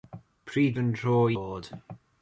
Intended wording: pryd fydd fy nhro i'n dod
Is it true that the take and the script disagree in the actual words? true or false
true